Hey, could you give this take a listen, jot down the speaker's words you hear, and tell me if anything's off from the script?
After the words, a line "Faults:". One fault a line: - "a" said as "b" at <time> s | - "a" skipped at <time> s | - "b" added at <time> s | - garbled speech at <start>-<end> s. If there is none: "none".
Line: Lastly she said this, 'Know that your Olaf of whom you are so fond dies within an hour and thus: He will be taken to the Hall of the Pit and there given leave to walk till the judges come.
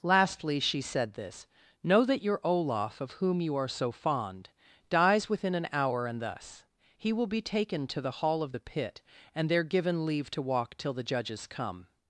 Lastly she said this, 'Know that your Olaf of whom you are so fond dies within an hour and thus: He will be taken to the Hall of the Pit and there given leave to walk till the judges come.
Faults:
none